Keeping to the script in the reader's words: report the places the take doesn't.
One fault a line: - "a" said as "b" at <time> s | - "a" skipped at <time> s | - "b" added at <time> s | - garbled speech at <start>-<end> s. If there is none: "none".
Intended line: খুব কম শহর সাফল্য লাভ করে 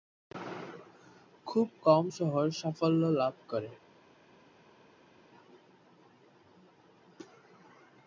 none